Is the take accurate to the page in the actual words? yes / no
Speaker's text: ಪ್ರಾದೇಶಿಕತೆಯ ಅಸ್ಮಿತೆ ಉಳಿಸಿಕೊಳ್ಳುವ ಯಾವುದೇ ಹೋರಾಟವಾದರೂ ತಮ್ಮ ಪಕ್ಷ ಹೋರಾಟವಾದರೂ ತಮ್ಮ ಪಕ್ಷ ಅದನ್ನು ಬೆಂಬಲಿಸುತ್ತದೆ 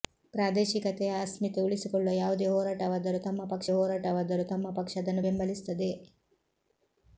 yes